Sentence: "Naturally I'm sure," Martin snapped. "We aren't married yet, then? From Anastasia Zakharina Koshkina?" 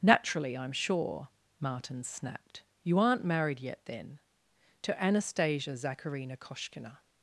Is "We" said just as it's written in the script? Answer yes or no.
no